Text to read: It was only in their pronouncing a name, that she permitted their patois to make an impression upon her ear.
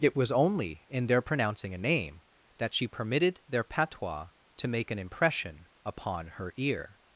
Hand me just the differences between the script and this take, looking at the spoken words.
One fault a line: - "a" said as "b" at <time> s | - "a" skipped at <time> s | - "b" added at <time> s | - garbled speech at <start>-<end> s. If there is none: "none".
none